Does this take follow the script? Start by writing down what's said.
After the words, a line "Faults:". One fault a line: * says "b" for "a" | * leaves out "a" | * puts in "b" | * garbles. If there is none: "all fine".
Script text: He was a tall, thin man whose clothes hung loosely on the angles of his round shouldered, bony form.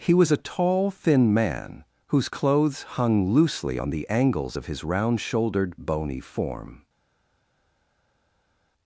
He was a tall, thin man whose clothes hung loosely on the angles of his round shouldered, bony form.
Faults:
all fine